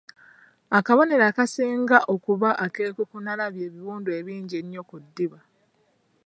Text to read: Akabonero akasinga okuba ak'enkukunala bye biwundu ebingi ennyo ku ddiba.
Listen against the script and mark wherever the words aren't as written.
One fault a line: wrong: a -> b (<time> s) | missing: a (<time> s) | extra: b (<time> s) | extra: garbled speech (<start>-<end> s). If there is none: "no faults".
no faults